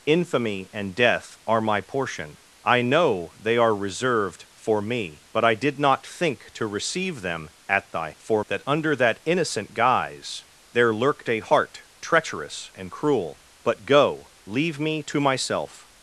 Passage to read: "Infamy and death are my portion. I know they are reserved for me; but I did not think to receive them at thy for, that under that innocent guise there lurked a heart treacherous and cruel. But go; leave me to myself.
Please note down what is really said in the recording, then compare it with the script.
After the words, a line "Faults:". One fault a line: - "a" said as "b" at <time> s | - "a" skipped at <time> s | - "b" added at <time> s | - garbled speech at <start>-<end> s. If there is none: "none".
"Infamy and death are my portion. I know they are reserved for me; but I did not think to receive them at thy for, that under that innocent guise there lurked a heart treacherous and cruel. But go; leave me to myself.
Faults:
none